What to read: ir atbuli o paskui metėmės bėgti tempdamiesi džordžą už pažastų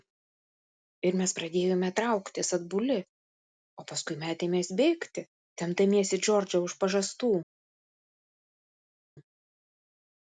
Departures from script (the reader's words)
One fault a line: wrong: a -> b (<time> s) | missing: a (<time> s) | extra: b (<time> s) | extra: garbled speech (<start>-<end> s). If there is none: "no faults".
extra: mes pradėjome trauktis (1.2 s)